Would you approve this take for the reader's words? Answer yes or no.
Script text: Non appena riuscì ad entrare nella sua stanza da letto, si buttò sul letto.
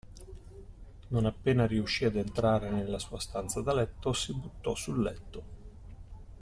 yes